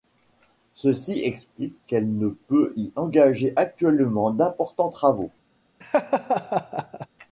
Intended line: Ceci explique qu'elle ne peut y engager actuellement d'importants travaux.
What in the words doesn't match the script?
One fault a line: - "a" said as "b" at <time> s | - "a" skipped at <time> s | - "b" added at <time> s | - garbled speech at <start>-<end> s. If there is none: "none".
none